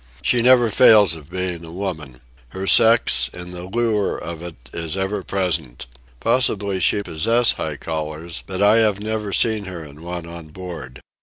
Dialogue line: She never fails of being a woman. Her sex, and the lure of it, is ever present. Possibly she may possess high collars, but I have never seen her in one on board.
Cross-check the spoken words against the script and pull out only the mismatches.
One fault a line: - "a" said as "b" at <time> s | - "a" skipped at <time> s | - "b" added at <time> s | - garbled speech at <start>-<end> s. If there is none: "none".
- "may" skipped at 7.0 s